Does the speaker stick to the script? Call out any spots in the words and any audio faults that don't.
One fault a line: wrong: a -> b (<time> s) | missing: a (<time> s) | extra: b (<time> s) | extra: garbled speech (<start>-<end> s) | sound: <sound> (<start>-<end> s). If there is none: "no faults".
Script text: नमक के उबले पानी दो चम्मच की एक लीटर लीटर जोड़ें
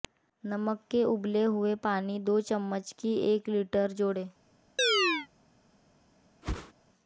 extra: हुए (1.4 s)
missing: लीटर (3.9 s)
sound: chirp (4.8-5.3 s)
sound: whoosh (6.4-6.7 s)